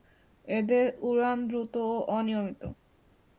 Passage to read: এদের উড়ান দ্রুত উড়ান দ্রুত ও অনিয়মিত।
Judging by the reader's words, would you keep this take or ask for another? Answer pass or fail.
fail